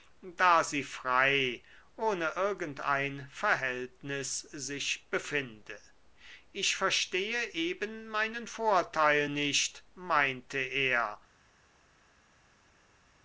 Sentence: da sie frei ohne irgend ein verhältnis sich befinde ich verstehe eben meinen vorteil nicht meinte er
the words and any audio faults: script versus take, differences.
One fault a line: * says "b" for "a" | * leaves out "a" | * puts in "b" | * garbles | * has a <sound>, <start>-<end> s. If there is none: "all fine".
all fine